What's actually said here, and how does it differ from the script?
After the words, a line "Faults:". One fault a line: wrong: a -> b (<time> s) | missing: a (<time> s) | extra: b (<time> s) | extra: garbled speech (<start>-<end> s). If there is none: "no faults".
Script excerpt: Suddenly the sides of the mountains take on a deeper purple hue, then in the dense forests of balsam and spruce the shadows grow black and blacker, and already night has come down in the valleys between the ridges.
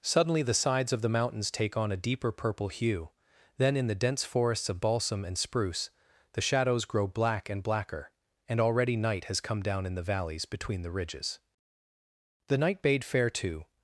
Suddenly the sides of the mountains take on a deeper purple hue, then in the dense forests of balsam and spruce the shadows grow black and blacker, and already night has come down in the valleys between the ridges. The night bade fair to
Faults:
extra: The night bade fair to (12.5 s)